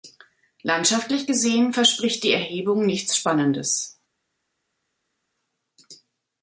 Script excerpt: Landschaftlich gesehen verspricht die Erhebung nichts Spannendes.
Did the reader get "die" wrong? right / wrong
right